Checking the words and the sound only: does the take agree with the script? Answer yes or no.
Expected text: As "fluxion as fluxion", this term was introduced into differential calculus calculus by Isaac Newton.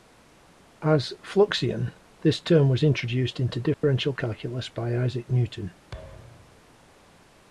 no